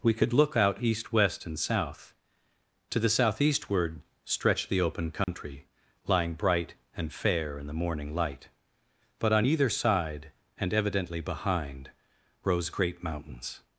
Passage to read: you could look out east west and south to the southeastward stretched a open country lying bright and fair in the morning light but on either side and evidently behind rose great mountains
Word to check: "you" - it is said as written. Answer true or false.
false